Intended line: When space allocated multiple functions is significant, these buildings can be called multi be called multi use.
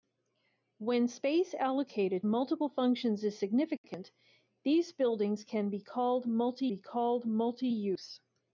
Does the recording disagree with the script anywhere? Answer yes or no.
no